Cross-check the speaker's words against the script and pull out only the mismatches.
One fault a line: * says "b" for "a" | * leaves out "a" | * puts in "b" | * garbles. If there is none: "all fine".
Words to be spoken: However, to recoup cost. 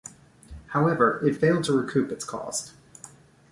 * puts in "it failed"
* puts in "its"